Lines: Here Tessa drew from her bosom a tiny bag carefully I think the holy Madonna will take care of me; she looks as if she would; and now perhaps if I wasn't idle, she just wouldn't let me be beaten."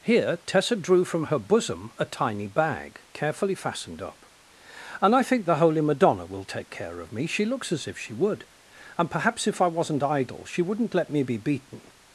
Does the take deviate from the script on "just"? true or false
true